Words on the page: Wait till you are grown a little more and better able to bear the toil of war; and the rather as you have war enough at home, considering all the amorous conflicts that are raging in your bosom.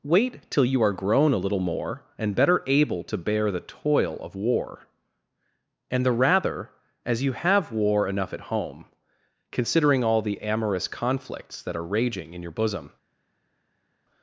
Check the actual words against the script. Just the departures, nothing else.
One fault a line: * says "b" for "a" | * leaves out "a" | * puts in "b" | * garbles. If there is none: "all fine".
all fine